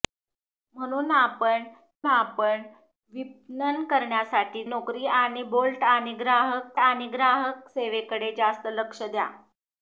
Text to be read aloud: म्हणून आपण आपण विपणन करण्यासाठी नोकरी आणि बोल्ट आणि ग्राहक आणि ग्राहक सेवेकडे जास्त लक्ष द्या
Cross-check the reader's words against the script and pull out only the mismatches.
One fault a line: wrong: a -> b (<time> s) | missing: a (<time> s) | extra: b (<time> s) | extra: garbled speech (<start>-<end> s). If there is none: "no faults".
no faults